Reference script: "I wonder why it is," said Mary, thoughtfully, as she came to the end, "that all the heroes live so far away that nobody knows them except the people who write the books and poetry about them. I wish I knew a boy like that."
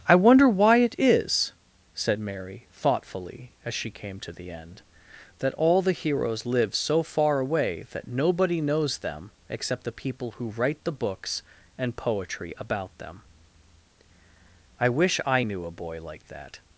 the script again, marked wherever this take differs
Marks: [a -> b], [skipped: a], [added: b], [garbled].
"I wonder why it is," said Mary, thoughtfully, as she came to the end, "that all the heroes live so far away that nobody knows them except the people who write the books and poetry about them. I wish I knew a boy like that."